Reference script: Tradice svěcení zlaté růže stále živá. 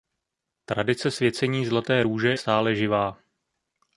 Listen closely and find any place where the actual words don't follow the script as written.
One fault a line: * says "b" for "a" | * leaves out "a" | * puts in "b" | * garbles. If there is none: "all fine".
all fine